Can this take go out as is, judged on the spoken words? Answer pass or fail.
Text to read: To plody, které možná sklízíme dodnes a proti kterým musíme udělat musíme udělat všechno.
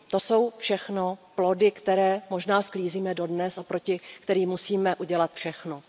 fail